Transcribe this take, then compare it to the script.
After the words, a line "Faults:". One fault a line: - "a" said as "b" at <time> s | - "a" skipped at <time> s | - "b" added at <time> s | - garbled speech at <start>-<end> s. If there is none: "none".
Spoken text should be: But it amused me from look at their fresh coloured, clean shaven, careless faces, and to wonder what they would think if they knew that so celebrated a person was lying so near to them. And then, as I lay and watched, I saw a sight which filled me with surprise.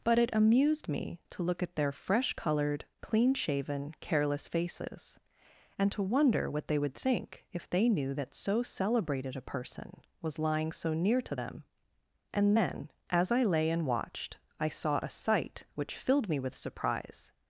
But it amused me to look at their fresh coloured, clean shaven, careless faces, and to wonder what they would think if they knew that so celebrated a person was lying so near to them. And then, as I lay and watched, I saw a sight which filled me with surprise.
Faults:
- "from" said as "to" at 1.3 s